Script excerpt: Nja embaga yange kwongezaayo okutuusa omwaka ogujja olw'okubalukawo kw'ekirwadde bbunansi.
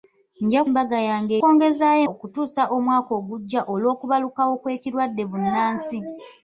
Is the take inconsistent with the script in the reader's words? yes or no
no